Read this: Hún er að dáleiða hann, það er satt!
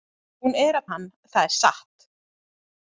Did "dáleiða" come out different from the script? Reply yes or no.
yes